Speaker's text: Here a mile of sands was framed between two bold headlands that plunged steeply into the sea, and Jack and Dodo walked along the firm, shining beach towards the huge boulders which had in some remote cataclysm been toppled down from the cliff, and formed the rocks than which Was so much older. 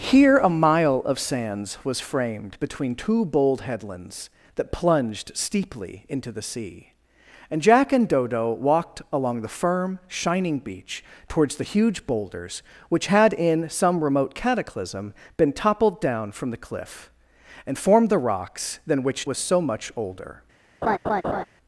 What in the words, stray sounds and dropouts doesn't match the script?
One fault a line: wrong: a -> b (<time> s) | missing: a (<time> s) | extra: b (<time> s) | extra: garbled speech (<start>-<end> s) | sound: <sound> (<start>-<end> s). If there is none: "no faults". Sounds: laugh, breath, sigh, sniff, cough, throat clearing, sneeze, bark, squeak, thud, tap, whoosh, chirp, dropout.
sound: laugh (20.8-21.4 s)